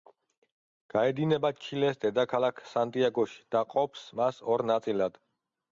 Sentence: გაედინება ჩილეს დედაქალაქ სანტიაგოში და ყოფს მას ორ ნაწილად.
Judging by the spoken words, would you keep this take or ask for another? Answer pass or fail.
pass